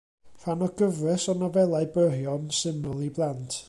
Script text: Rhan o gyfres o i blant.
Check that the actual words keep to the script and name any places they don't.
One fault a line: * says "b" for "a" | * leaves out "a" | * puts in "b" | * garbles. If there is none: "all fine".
* puts in "nofelau byrion syml"